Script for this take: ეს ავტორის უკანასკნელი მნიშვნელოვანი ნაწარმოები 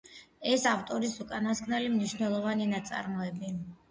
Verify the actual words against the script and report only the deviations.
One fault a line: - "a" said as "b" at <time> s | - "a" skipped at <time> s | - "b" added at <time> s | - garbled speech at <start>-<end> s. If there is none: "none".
none